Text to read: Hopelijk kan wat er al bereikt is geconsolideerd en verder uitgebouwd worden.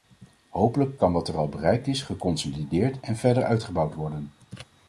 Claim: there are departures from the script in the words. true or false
false